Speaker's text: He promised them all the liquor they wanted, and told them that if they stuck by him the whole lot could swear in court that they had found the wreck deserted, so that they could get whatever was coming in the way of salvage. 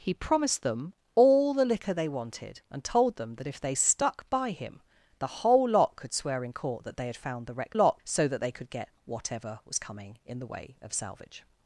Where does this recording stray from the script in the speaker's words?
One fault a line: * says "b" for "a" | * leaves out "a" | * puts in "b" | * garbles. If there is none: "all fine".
* says "lot" for "deserted"